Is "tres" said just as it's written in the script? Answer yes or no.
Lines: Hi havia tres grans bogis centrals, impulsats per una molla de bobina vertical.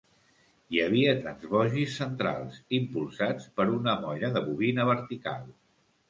no